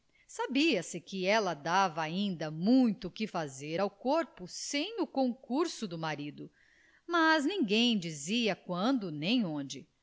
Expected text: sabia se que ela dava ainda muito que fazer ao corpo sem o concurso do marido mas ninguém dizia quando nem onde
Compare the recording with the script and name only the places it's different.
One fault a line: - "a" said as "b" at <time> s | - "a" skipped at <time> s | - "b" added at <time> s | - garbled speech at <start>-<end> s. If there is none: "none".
none